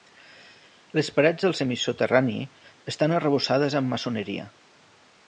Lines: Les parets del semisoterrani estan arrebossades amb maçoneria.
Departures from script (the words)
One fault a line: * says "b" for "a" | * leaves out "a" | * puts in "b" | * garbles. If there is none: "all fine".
all fine